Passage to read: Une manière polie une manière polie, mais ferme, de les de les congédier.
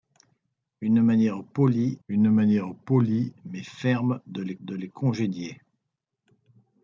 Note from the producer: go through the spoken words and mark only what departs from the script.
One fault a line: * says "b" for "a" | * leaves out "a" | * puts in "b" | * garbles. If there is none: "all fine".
all fine